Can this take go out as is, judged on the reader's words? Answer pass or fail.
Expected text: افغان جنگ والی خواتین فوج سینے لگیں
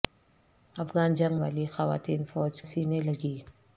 pass